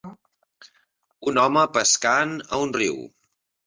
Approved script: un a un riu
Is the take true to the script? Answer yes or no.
no